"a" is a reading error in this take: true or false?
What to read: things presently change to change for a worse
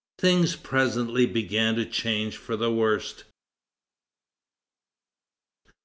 true